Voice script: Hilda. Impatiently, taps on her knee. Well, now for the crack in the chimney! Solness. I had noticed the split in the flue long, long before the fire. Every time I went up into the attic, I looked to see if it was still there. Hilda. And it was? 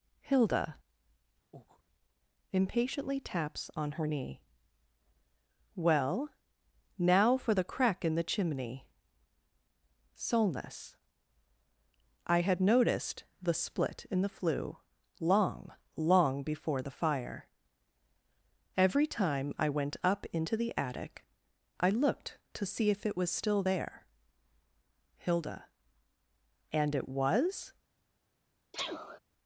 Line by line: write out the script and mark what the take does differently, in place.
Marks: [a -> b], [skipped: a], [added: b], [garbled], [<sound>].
Hilda. [breath] Impatiently, taps on her knee. Well, now for the crack in the chimney! Solness. I had noticed the split in the flue long, long before the fire. Every time I went up into the attic, I looked to see if it was still there. Hilda. And it was? [sneeze]